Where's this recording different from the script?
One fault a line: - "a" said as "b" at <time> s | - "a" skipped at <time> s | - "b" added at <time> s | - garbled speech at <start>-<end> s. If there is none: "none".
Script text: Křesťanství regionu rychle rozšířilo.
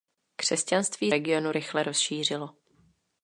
none